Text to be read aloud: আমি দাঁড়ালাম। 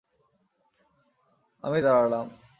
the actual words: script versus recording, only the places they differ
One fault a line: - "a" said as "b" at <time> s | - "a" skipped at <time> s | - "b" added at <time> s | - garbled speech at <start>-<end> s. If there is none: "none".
none